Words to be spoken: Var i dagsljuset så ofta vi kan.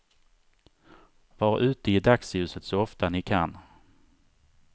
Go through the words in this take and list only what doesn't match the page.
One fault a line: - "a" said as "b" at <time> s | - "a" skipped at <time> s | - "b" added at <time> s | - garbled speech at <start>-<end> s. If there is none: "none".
- "ute" added at 1.6 s
- "vi" said as "ni" at 3.1 s